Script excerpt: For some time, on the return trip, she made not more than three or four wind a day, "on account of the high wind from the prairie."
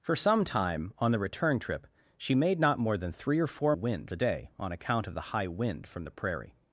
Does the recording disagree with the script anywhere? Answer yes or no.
no